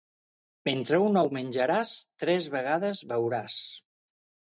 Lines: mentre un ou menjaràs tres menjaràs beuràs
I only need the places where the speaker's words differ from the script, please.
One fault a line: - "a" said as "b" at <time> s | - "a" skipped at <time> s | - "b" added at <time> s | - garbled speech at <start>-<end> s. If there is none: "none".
- "menjaràs" said as "vegades" at 2.6 s